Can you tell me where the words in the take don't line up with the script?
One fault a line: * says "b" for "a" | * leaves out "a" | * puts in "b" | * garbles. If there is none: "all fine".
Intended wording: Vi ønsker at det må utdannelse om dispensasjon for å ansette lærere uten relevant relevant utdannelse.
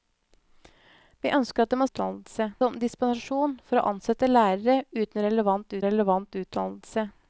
all fine